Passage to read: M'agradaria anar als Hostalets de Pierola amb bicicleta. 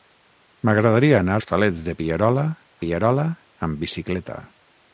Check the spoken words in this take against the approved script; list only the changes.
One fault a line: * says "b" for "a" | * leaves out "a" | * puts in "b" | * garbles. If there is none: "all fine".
* leaves out "als"
* puts in "Pierola"